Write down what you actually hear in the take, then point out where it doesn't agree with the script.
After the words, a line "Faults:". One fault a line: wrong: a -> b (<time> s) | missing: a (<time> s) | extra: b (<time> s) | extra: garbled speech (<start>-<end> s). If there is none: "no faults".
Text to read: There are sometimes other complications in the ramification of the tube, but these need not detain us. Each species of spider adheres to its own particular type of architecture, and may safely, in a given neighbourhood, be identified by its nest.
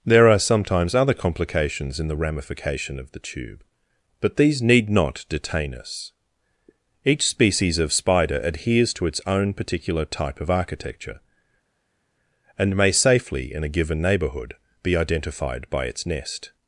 There are sometimes other complications in the ramification of the tube, but these need not detain us. Each species of spider adheres to its own particular type of architecture, and may safely, in a given neighbourhood, be identified by its nest.
Faults:
no faults